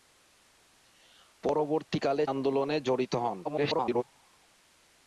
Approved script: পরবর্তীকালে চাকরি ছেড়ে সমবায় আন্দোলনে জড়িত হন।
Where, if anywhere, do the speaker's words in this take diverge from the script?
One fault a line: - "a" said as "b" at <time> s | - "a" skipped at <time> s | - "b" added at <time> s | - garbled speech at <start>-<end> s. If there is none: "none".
- "চাকরি ছেড়ে সমবায়" skipped at 2.2 s
- garbled speech at 3.4-4.0 s